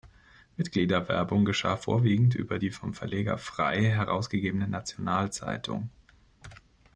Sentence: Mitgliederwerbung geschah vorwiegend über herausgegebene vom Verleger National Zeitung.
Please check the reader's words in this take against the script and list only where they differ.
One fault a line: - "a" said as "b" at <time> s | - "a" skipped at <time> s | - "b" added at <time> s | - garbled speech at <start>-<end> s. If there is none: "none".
- "herausgegebene" said as "die" at 2.5 s
- "Frey herausgegebene" added at 3.4 s